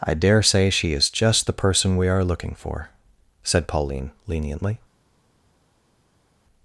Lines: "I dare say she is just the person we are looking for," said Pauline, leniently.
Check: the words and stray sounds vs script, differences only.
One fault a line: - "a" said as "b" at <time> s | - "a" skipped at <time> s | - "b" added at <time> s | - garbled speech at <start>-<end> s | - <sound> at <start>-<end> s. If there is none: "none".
none